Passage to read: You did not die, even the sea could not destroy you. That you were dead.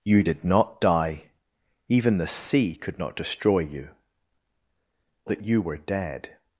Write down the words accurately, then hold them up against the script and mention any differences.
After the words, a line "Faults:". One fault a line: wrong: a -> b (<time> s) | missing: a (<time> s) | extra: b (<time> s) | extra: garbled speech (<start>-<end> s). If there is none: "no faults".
You did not die, even the sea could not destroy you. That you were dead.
Faults:
no faults